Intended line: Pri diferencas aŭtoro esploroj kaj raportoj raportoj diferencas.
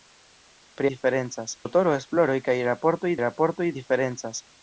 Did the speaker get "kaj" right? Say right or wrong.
right